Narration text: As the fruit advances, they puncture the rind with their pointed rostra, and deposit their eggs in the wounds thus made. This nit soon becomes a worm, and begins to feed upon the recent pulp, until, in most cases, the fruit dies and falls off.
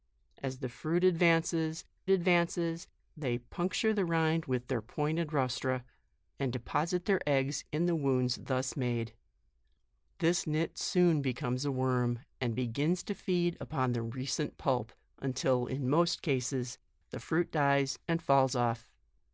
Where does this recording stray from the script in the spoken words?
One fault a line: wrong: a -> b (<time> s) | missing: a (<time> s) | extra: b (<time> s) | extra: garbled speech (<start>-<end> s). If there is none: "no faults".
extra: advances (2.1 s)